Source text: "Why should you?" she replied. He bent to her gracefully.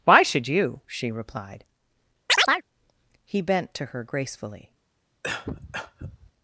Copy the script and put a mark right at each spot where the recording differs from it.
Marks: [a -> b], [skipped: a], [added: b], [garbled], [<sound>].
"Why should you?" she replied. [chirp] He bent to her gracefully. [cough]